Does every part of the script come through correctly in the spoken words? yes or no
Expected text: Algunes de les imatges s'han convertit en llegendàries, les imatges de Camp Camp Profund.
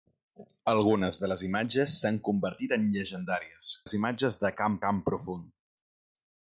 yes